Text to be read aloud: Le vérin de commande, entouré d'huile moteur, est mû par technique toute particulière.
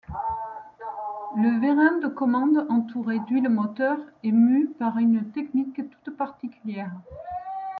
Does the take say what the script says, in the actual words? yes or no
no